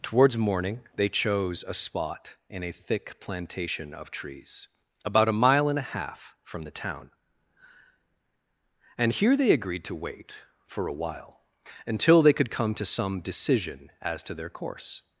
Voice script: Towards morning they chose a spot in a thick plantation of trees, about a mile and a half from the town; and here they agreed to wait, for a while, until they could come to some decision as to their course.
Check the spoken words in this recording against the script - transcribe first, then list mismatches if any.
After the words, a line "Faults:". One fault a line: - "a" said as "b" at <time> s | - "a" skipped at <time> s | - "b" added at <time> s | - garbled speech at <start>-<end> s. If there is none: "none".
Towards morning they chose a spot in a thick plantation of trees, about a mile and a half from the town; and here they agreed to wait, for a while, until they could come to some decision as to their course.
Faults:
none